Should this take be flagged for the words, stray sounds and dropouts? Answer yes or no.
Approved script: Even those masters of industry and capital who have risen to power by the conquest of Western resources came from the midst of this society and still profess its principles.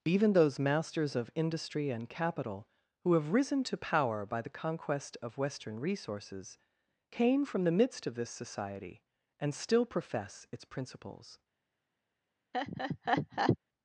yes